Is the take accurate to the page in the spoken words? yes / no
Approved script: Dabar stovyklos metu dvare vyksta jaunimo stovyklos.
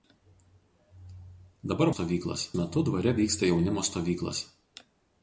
yes